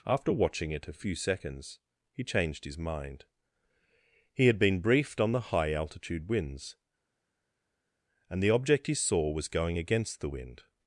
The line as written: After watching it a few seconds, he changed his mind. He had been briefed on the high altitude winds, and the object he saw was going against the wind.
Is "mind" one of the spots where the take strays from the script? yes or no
no